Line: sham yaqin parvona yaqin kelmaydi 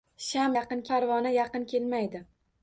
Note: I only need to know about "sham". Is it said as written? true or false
true